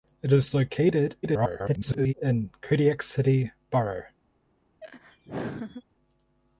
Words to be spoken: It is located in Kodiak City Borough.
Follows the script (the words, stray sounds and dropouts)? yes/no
no